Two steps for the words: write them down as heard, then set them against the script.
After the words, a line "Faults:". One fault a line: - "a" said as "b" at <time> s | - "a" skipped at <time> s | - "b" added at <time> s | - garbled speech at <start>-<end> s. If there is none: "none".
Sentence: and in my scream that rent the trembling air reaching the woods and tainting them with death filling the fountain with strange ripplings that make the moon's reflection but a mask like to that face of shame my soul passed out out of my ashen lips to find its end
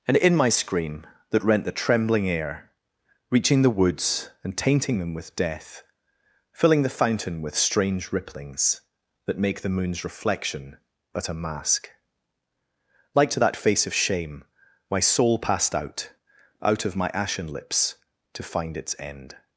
and in my scream that rent the trembling air reaching the woods and tainting them with death filling the fountain with strange ripplings that make the moon's reflection but a mask like to that face of shame my soul passed out out of my ashen lips to find its end
Faults:
none